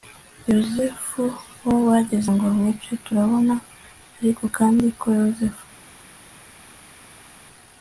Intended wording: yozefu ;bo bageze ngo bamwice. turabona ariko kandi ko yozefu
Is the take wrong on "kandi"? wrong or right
right